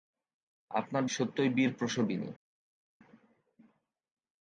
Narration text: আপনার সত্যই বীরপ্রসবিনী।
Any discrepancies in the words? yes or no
no